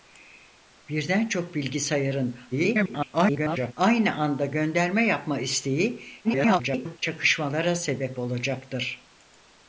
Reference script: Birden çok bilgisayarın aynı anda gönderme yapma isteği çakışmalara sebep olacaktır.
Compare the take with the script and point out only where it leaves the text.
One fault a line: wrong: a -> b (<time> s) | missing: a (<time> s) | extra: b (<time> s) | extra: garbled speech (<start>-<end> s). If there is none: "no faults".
extra: garbled speech (2.5-3.7 s)
extra: garbled speech (6.2-7.0 s)